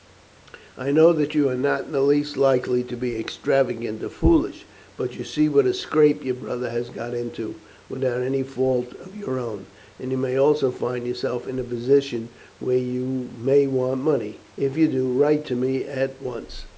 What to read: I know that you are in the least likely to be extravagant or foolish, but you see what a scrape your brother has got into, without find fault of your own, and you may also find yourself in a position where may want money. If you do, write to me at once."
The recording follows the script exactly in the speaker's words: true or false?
false